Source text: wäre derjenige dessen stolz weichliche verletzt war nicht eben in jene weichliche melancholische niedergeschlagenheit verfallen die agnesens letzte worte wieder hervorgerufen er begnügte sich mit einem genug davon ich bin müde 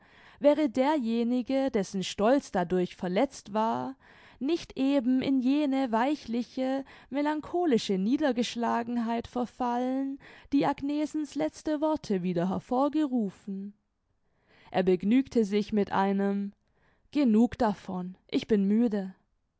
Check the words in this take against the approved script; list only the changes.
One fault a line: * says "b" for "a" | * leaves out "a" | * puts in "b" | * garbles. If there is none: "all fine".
* says "dadurch" for "weichliche"